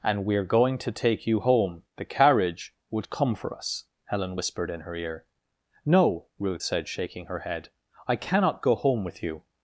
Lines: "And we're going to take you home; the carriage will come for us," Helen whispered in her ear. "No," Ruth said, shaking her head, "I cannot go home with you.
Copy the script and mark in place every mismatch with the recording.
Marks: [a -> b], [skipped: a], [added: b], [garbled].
"And we're going to take you home; the carriage [will -> would] come for us," Helen whispered in her ear. "No," Ruth said, shaking her head, "I cannot go home with you.